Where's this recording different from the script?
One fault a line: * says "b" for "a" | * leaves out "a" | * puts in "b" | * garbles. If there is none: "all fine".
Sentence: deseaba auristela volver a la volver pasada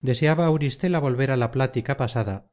* says "plática" for "volver"